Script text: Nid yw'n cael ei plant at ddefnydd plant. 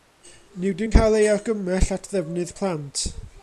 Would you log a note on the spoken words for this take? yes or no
yes